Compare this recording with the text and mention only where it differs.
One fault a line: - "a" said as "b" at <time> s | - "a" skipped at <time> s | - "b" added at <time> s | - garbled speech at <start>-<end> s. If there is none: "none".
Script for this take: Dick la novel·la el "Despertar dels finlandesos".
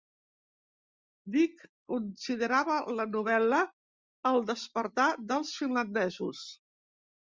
- "considerava" added at 1.9 s